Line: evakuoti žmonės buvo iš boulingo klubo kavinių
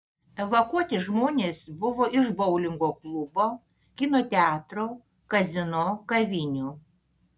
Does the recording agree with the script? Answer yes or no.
no